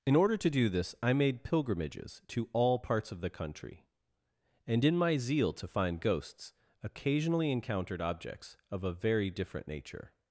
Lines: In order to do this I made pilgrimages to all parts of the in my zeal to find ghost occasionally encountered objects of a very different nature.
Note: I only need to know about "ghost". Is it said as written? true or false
false